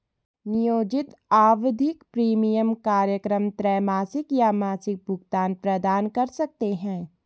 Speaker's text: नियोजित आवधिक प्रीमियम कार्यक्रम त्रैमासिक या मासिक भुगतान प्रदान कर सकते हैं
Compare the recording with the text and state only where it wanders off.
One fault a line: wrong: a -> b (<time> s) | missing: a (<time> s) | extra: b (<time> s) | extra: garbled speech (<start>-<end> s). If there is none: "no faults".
no faults